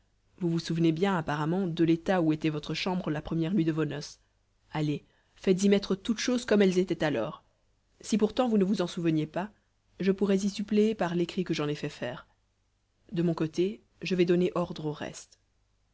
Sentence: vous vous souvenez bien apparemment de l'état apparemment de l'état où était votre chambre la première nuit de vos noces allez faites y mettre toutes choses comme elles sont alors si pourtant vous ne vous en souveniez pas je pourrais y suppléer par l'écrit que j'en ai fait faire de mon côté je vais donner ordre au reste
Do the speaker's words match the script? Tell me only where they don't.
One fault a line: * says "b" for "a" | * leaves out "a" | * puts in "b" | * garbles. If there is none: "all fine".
* leaves out "apparemment de l'état"
* says "étaient" for "sont"